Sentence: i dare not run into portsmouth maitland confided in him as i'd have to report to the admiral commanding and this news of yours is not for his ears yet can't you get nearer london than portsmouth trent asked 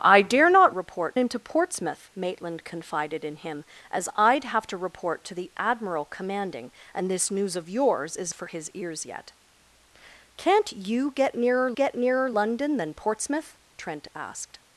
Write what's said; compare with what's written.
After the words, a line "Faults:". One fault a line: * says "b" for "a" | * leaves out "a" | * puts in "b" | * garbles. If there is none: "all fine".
i dare not report into portsmouth maitland confided in him as i'd have to report to the admiral commanding and this news of yours is for his ears yet can't you get nearer get nearer london than portsmouth trent asked
Faults:
* says "report" for "run"
* leaves out "not"
* puts in "get nearer"